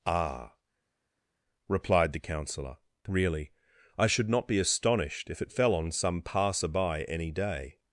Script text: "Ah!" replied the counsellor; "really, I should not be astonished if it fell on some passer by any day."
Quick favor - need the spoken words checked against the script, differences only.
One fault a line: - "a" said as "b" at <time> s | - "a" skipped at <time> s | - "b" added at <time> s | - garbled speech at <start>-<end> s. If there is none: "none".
none